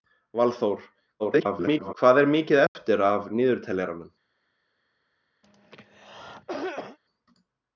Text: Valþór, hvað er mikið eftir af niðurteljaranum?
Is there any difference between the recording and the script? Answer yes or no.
yes